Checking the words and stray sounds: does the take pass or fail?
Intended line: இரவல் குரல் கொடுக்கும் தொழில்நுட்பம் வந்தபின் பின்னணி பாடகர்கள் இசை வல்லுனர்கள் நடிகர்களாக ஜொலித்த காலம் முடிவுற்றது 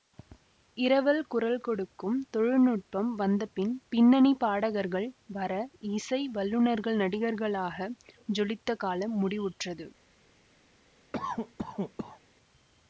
fail